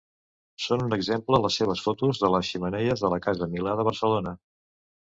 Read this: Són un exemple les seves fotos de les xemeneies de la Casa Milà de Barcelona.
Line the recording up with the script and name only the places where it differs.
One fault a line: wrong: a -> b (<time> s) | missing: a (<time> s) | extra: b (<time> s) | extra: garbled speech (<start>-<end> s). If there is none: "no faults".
no faults